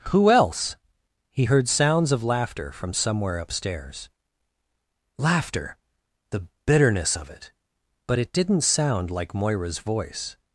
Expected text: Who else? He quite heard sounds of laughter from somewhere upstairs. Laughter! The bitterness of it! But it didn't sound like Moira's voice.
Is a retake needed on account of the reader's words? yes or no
yes